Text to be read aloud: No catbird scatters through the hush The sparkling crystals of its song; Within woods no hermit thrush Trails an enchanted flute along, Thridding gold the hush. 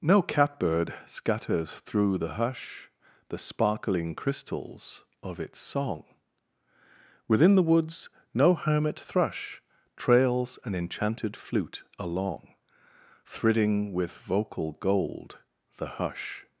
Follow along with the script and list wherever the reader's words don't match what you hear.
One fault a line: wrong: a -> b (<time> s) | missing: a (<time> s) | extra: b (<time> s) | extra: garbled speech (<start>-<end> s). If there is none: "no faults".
extra: the (7.5 s)
extra: with vocal (13.9 s)